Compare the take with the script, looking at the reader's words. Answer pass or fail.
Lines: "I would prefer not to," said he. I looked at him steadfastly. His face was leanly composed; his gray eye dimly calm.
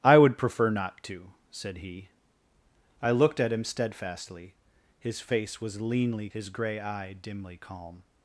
fail